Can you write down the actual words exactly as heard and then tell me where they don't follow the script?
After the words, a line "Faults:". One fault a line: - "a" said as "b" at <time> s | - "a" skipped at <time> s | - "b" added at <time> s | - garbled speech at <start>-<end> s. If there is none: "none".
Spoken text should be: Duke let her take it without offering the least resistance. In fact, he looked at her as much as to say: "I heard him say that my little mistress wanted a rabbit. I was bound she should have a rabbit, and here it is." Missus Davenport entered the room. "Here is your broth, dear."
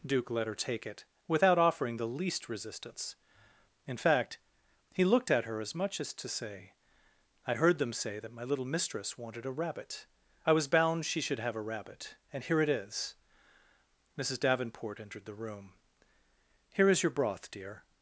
Duke let her take it without offering the least resistance. In fact, he looked at her as much as to say: "I heard them say that my little mistress wanted a rabbit. I was bound she should have a rabbit, and here it is." Missus Davenport entered the room. "Here is your broth, dear."
Faults:
- "him" said as "them" at 7.8 s